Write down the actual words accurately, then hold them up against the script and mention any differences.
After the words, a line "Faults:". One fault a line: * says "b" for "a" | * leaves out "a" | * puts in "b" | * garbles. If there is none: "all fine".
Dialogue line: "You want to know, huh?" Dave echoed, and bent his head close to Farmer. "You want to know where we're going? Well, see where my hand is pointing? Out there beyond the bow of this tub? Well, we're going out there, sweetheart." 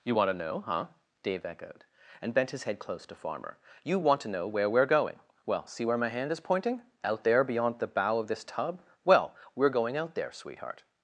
"You want to know, huh?" Dave echoed, and bent his head close to Farmer. "You want to know where we're going? Well, see where my hand is pointing? Out there beyond the bow of this tub? Well, we're going out there, sweetheart."
Faults:
all fine